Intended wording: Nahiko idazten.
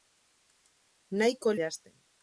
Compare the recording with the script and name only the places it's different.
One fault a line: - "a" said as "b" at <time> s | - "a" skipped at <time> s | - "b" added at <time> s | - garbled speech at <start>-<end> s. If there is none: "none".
none